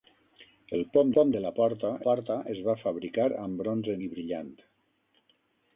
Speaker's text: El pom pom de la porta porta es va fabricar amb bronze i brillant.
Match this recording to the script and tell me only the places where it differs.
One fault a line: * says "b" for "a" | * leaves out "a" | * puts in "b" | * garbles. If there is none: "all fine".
all fine